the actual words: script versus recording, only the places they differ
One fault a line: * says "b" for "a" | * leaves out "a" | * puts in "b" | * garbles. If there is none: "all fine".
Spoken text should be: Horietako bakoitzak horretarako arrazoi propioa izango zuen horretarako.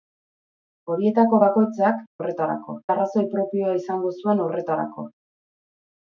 all fine